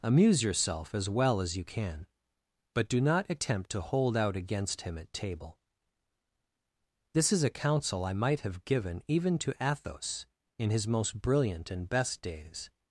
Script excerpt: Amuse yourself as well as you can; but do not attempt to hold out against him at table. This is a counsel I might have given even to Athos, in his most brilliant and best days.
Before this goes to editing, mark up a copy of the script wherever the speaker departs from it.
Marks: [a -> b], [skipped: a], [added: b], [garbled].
Amuse yourself as well as you can; but do not attempt to hold out against him at table. This is a counsel I might have given even to Athos, in his most brilliant and best days.